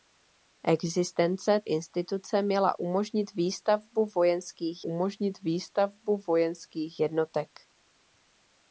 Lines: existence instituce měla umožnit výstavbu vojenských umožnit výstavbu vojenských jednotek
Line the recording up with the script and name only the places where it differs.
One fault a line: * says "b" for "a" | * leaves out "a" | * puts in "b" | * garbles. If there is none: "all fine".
all fine